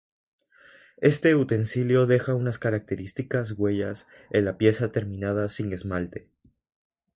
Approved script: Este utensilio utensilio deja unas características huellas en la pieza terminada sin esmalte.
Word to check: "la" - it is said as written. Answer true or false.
true